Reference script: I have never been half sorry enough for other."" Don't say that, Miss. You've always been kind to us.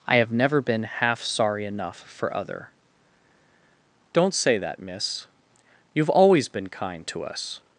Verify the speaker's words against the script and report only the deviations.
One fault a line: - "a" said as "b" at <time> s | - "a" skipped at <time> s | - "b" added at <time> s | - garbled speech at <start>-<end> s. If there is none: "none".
none